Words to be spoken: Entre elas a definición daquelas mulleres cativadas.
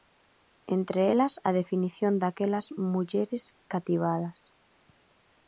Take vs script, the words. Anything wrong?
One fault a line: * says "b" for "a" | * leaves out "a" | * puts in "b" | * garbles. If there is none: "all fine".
all fine